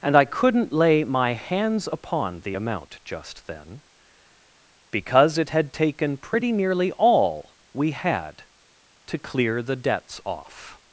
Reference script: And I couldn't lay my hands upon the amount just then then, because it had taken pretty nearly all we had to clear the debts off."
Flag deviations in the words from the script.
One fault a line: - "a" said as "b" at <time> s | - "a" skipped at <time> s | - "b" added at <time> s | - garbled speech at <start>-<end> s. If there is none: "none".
- "then" skipped at 3.8 s